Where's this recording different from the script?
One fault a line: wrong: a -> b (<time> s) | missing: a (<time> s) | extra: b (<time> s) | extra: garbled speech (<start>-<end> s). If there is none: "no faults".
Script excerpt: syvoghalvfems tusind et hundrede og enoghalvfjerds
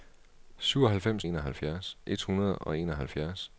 wrong: tusind -> enoghalvfjerds (1.2 s)